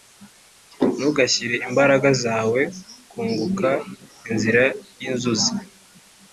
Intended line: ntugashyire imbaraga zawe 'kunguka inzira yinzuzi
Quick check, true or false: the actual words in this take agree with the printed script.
true